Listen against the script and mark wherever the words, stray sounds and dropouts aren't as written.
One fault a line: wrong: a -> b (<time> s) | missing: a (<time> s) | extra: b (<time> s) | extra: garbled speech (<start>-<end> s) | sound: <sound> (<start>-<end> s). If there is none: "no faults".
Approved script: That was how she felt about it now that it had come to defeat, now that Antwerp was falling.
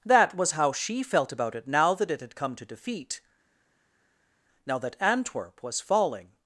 no faults